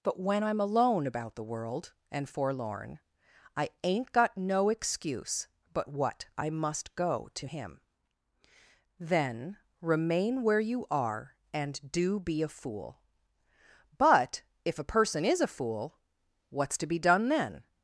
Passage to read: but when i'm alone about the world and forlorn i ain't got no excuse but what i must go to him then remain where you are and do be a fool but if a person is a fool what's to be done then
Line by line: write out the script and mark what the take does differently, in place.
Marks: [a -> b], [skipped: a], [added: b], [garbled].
but when i'm alone about the world and forlorn i ain't got no excuse but what i must go to him then remain where you are and do be a fool but if a person is a fool what's to be done then